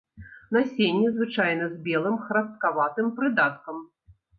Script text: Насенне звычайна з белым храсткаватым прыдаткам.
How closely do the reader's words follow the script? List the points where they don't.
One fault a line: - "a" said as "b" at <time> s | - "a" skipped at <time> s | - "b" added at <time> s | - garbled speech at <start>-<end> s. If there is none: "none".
none